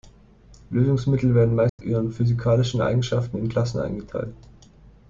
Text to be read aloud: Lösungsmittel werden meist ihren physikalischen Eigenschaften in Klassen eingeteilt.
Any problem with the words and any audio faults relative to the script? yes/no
yes